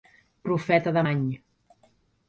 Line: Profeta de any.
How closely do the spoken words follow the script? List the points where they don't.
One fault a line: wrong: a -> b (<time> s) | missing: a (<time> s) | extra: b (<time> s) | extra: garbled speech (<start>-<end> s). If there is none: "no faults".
no faults